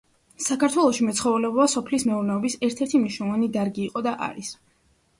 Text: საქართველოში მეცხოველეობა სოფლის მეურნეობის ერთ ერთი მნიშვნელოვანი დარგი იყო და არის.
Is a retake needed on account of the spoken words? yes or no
no